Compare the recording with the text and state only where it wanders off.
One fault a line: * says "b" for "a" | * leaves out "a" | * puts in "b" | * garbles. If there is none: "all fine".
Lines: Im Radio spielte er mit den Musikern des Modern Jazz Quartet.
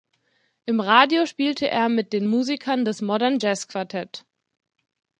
all fine